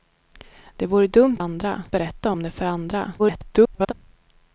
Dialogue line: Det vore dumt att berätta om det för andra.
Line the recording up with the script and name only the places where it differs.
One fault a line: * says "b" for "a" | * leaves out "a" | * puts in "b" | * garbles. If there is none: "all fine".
* says "andra" for "att"
* garbles